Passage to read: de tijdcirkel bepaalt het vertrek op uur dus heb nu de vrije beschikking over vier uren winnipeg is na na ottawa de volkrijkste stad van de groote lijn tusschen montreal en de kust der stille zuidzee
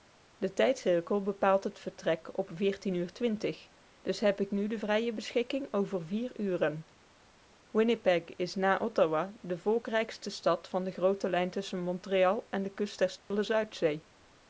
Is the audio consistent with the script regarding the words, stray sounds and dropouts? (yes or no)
no